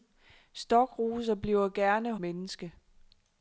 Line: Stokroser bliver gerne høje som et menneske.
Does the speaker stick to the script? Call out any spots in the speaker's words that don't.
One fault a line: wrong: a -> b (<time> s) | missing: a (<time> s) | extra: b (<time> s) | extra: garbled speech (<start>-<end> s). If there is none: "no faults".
missing: høje som et (2.1 s)